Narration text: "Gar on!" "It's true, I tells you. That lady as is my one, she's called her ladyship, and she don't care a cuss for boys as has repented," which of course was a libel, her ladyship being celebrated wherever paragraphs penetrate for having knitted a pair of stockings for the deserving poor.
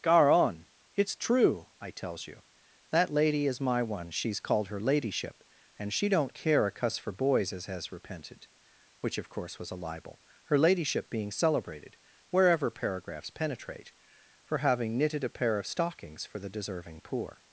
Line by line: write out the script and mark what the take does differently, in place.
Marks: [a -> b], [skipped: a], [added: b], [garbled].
"Gar on!" "It's true, I tells you. That lady [skipped: as] is my one, she's called her ladyship, and she don't care a cuss for boys as has repented," which of course was a libel, her ladyship being celebrated wherever paragraphs penetrate for having knitted a pair of stockings for the deserving poor.